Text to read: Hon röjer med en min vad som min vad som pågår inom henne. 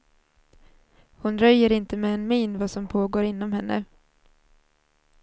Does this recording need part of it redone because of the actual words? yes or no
yes